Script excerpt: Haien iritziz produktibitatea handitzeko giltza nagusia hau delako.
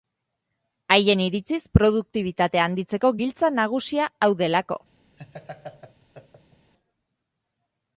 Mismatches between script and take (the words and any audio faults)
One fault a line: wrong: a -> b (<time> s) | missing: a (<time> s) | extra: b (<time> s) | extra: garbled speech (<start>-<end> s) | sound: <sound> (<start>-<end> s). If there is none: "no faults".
sound: laugh (5.2-6.7 s)